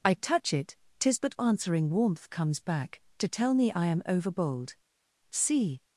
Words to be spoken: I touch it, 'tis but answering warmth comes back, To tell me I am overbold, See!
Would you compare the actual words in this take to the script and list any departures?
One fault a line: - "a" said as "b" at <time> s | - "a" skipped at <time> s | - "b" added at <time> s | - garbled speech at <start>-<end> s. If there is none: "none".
none